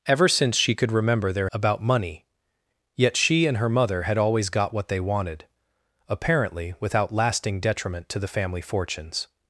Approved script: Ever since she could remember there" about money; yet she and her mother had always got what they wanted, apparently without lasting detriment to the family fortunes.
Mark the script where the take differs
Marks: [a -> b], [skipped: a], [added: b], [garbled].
Ever since she could remember there" about money; yet she and her mother had always got what they wanted, apparently without lasting detriment to the family fortunes.